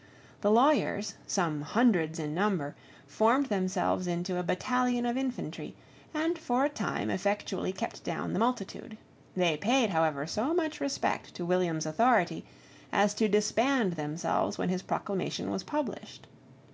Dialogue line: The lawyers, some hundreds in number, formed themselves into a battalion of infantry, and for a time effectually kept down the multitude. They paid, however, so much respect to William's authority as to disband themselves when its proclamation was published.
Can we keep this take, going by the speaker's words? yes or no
no